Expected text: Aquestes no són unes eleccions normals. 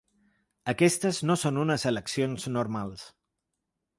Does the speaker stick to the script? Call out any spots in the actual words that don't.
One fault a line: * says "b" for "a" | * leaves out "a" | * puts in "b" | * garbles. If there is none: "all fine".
all fine